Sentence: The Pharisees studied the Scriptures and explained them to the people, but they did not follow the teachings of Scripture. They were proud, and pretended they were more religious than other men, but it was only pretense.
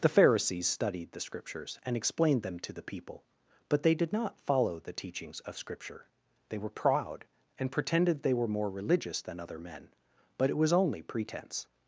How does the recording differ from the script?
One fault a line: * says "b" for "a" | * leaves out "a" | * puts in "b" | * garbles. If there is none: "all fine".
all fine